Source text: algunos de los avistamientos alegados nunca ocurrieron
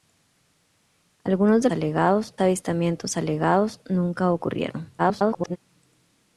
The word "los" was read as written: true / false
false